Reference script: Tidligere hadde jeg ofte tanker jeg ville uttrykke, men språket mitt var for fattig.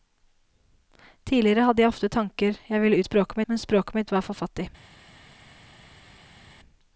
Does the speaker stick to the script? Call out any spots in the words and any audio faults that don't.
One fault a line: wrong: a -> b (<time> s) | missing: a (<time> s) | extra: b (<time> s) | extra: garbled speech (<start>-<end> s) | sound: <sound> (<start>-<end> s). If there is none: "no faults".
wrong: uttrykke -> språket (3.1 s)